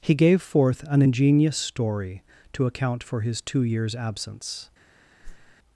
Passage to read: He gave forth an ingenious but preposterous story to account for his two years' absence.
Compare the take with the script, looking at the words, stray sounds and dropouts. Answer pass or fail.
fail